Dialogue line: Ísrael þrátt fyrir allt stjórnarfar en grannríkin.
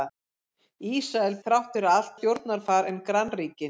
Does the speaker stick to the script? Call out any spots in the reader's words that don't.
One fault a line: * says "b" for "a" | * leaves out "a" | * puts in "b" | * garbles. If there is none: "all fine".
all fine